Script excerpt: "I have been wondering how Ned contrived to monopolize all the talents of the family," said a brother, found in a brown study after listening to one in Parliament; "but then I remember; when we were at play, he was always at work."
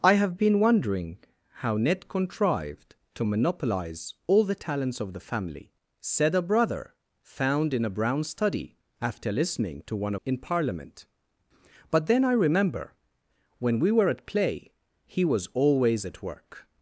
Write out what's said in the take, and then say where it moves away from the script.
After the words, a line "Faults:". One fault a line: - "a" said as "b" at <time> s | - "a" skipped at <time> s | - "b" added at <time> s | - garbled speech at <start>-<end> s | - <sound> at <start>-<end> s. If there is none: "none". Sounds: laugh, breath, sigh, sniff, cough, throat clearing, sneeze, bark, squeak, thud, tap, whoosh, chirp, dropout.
"I have been wondering how Ned contrived to monopolize all the talents of the family," said a brother, found in a brown study after listening to one in Parliament; "but then I remember; when we were at play, he was always at work."
Faults:
none